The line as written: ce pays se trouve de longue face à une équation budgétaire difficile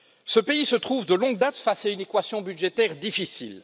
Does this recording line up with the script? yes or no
no